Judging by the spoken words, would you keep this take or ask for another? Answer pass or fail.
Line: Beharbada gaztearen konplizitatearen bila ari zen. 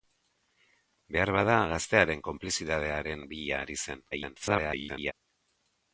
fail